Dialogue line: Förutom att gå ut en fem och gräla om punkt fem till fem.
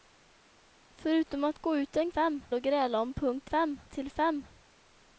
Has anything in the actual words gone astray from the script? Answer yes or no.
no